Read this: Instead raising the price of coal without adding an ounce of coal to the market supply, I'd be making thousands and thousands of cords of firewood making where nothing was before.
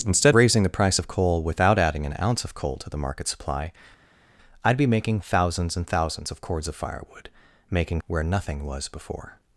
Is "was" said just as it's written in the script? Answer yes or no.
yes